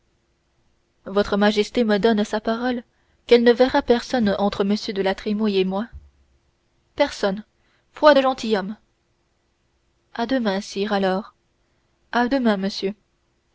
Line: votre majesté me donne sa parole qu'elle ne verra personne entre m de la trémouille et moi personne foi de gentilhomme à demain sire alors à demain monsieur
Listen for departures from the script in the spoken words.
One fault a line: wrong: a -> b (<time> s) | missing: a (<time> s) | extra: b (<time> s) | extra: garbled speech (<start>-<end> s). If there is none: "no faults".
no faults